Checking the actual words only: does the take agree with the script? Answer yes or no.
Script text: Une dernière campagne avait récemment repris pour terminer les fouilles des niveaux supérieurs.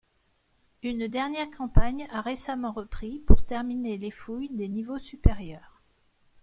no